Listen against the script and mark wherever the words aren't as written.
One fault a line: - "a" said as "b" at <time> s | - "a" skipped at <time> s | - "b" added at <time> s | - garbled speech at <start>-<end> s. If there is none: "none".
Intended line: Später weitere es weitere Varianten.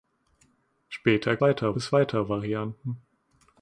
none